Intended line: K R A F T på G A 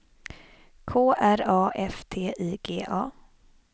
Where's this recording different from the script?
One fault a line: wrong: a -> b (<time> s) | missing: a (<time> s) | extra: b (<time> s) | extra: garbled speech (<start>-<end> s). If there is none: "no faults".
wrong: på -> I (2.3 s)